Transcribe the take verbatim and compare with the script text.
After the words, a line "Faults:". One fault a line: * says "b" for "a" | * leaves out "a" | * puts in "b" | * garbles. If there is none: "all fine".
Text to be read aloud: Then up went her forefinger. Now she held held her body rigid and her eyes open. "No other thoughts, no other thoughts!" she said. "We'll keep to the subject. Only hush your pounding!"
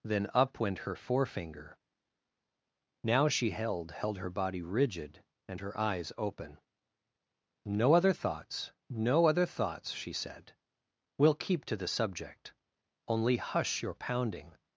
Then up went her forefinger. Now she held held her body rigid and her eyes open. "No other thoughts, no other thoughts!" she said. "We'll keep to the subject. Only hush your pounding!"
Faults:
all fine